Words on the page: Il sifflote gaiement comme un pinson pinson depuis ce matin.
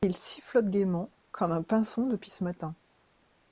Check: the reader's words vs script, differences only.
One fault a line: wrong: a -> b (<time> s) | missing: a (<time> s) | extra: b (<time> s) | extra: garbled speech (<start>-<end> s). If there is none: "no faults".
missing: pinson (2.1 s)